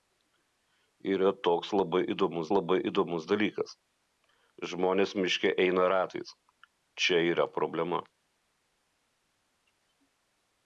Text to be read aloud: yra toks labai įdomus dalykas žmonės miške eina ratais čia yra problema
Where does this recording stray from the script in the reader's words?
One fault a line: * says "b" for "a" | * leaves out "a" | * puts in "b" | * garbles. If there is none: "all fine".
* puts in "labai įdomus"